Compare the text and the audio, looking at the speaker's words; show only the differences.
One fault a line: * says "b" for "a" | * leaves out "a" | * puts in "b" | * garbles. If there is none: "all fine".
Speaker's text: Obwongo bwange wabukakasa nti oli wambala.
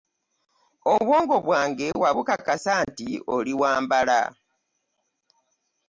all fine